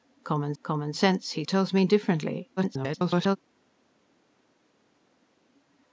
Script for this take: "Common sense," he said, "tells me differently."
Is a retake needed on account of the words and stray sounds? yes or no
yes